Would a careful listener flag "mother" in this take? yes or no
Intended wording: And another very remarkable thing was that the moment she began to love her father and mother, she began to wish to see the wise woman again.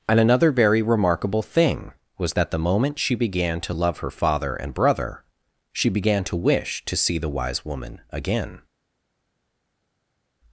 yes